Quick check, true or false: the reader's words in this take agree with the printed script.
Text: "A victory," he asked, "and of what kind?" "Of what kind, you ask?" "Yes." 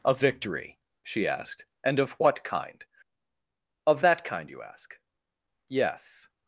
false